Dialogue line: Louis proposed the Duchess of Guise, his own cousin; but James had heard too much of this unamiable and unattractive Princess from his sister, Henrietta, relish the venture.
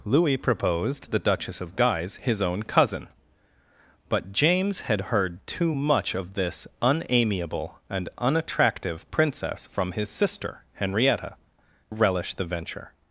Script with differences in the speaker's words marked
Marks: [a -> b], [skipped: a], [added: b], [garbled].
Louis proposed the Duchess of Guise, his own cousin; but James had heard too much of this unamiable and unattractive Princess from his sister, Henrietta, relish the venture.